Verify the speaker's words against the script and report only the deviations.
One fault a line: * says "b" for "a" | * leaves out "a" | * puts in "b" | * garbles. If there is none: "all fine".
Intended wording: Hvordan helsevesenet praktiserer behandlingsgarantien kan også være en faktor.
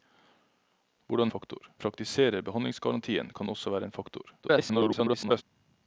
* says "faktor" for "helsevesenet"
* garbles